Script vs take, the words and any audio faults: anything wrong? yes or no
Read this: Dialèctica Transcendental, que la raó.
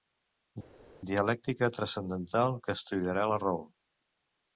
yes